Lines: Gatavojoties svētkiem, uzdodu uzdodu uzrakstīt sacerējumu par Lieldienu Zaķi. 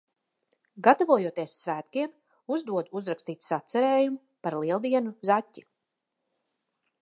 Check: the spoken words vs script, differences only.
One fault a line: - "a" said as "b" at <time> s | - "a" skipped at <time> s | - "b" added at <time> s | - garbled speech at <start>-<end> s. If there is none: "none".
- "uzdodu" skipped at 3.0 s